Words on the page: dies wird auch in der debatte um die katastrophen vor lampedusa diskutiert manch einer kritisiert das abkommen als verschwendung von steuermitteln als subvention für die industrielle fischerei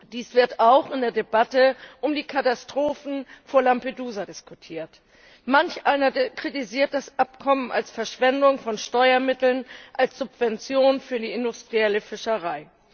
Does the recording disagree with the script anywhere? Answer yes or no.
no